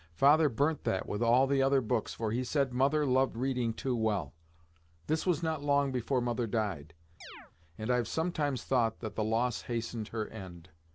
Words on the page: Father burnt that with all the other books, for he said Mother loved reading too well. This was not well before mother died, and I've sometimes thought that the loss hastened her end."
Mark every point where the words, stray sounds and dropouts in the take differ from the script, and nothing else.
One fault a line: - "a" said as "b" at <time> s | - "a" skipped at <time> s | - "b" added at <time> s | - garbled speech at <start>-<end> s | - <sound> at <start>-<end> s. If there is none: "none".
- "well" said as "long" at 5.6 s
- chirp at 7.2-7.5 s